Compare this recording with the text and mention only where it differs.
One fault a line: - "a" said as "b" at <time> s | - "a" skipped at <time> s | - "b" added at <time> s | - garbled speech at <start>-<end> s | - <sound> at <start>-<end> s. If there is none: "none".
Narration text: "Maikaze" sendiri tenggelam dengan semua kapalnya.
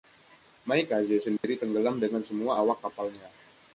- dropout at 1.4-1.4 s
- "awak" added at 2.5 s